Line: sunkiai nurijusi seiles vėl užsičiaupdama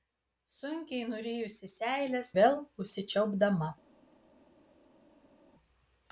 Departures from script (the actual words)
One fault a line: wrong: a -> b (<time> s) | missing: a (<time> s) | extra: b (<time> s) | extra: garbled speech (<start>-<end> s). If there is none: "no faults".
no faults